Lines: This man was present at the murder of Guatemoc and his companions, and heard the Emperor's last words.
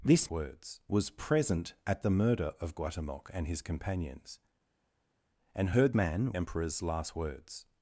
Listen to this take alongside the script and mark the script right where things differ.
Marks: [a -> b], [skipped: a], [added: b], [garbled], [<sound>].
This [man -> words] was present at the murder of Guatemoc and his companions, and heard [the -> man] Emperor's last words.